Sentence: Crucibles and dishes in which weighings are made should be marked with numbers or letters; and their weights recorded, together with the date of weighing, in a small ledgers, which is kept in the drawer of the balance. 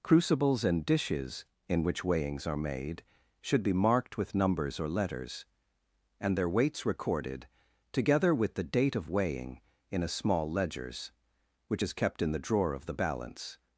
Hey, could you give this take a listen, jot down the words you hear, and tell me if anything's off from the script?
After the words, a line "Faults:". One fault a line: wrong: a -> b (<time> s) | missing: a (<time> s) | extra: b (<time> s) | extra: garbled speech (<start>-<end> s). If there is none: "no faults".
Crucibles and dishes in which weighings are made should be marked with numbers or letters; and their weights recorded, together with the date of weighing, in a small ledgers, which is kept in the drawer of the balance.
Faults:
no faults